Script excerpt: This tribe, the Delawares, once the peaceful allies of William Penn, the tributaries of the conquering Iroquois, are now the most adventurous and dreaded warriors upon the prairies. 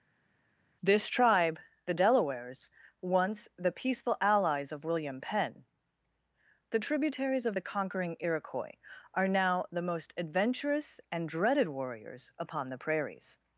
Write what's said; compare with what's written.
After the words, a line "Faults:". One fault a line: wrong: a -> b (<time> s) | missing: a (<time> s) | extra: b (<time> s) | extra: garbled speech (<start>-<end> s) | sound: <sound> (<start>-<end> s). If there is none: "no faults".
This tribe, the Delawares, once the peaceful allies of William Penn, the tributaries of the conquering Iroquois, are now the most adventurous and dreaded warriors upon the prairies.
Faults:
no faults